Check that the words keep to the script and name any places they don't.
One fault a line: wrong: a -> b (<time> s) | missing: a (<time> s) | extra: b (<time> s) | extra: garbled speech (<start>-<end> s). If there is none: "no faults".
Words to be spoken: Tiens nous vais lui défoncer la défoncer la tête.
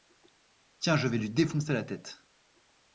wrong: nous -> je (1.0 s)
missing: défoncer la (1.8 s)